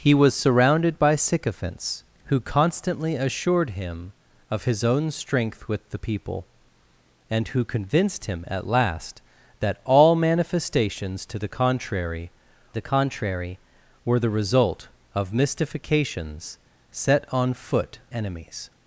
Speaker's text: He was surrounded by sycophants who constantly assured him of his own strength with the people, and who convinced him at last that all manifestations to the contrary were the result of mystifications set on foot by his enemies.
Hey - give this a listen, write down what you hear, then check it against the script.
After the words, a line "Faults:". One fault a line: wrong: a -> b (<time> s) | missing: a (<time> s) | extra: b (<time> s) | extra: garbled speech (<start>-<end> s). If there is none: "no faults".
He was surrounded by sycophants who constantly assured him of his own strength with the people, and who convinced him at last that all manifestations to the contrary the contrary were the result of mystifications set on foot enemies.
Faults:
extra: the contrary (12.7 s)
missing: by his (18.0 s)